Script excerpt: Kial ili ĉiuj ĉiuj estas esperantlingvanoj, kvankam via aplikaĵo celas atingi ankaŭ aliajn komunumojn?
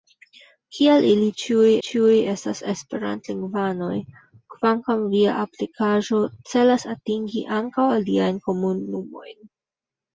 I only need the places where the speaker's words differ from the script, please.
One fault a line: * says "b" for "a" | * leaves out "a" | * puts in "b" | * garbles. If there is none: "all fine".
all fine